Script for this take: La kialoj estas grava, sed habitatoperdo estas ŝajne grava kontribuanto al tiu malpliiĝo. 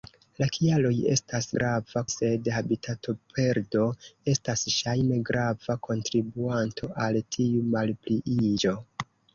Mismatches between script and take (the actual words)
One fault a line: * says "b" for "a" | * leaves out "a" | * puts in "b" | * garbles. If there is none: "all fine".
all fine